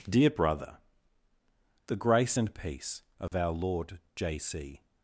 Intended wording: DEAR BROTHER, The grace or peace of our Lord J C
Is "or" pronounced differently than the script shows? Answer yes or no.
yes